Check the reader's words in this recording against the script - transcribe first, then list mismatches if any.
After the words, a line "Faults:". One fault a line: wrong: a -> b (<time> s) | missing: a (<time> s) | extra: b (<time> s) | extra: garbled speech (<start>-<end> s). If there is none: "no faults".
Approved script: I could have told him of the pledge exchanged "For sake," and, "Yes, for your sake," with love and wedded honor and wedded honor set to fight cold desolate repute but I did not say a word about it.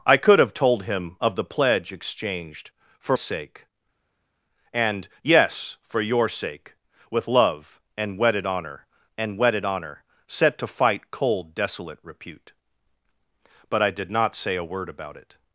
I could have told him of the pledge exchanged "For sake," and, "Yes, for your sake," with love and wedded honor and wedded honor set to fight cold desolate repute but I did not say a word about it.
Faults:
no faults